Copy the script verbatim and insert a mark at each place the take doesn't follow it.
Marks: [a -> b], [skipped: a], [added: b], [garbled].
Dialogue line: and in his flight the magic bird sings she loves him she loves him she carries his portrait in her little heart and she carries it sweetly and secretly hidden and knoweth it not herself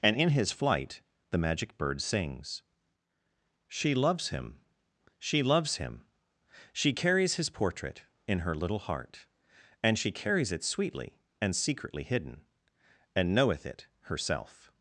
and in his flight the magic bird sings she loves him she loves him she carries his portrait in her little heart and she carries it sweetly and secretly hidden and knoweth it [skipped: not] herself